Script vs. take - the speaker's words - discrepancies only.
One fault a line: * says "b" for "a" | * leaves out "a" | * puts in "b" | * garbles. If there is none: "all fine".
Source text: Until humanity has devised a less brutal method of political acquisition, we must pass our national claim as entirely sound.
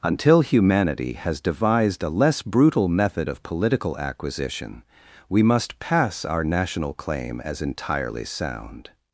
all fine